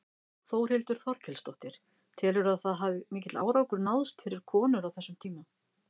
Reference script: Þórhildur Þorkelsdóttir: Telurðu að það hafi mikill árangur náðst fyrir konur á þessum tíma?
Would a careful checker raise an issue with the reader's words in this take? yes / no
no